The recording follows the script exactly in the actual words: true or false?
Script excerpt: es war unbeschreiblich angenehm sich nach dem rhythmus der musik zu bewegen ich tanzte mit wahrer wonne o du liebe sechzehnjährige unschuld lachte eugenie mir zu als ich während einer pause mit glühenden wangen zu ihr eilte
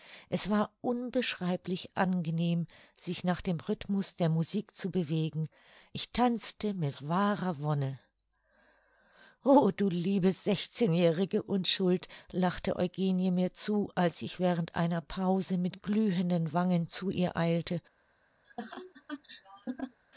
true